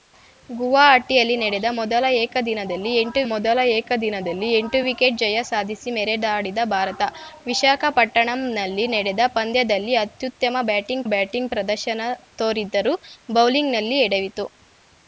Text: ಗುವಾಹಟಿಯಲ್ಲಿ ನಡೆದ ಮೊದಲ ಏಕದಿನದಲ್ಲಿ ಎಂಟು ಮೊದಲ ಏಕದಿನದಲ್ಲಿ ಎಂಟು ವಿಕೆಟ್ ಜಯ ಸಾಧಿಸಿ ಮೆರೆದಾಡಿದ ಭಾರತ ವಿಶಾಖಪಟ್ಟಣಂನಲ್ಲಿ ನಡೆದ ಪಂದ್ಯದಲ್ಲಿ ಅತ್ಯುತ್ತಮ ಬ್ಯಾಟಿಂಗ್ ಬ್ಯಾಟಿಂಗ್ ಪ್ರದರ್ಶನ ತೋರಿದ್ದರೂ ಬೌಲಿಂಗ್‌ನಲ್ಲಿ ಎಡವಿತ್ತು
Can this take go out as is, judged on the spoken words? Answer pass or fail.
pass